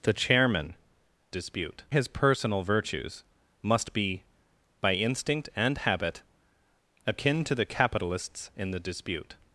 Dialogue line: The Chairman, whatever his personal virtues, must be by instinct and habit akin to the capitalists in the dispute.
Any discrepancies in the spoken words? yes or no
yes